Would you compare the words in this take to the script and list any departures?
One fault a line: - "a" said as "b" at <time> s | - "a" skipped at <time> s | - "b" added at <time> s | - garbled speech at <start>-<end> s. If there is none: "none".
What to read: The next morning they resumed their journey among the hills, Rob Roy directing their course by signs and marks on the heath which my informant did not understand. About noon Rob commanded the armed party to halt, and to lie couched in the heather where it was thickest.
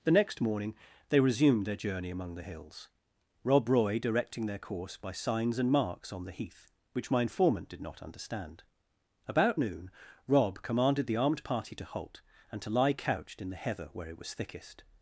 none